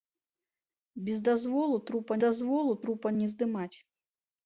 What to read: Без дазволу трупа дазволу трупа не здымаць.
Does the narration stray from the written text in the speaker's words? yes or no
no